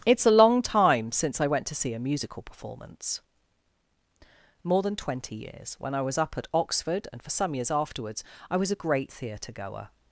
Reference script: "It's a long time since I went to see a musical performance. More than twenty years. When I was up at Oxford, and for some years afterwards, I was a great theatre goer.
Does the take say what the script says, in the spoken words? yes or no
yes